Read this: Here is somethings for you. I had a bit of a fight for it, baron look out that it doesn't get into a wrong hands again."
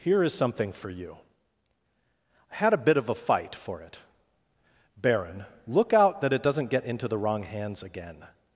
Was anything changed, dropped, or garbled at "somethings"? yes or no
yes